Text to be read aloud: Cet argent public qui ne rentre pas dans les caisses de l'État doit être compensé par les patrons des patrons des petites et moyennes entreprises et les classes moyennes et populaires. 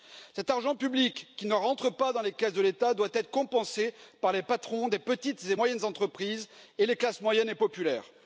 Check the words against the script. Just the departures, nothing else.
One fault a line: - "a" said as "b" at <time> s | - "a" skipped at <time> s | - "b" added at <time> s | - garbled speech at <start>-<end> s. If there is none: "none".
- "patrons des" skipped at 5.0 s